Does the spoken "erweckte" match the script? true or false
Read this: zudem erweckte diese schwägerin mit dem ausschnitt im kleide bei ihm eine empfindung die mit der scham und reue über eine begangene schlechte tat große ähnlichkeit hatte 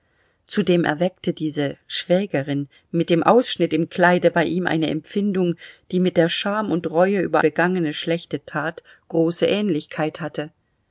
true